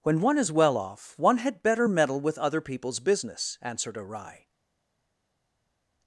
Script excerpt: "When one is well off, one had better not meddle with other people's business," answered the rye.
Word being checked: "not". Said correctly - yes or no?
no